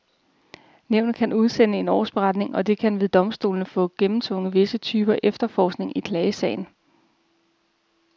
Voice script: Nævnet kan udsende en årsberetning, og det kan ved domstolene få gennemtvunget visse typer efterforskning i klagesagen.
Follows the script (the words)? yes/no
yes